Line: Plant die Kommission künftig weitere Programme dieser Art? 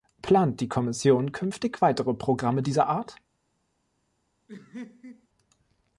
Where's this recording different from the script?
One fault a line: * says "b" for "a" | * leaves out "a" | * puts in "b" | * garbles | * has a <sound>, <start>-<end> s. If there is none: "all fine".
* has a laugh, 4.5-5.3 s